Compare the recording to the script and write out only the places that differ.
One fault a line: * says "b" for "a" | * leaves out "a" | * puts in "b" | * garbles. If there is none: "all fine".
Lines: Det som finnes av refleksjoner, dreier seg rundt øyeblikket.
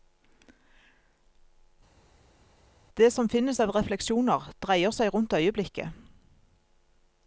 all fine